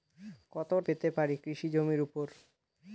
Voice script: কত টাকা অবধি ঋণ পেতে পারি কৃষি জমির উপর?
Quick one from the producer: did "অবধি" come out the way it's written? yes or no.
no